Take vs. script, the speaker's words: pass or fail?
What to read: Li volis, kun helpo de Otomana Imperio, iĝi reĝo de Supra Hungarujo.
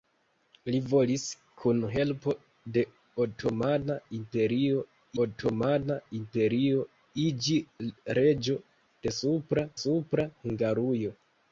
fail